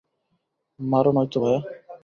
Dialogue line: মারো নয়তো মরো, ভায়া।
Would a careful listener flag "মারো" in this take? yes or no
no